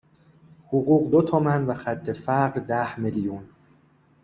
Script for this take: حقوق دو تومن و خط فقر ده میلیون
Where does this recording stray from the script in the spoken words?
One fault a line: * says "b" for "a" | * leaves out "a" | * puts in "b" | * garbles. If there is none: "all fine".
all fine